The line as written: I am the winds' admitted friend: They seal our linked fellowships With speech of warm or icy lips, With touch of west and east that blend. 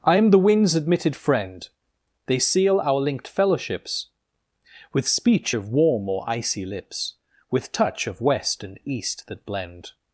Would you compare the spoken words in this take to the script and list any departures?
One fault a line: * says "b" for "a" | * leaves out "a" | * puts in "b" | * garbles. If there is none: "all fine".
all fine